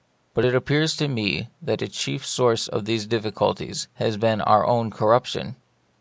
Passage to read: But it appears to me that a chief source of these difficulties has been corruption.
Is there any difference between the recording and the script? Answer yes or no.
yes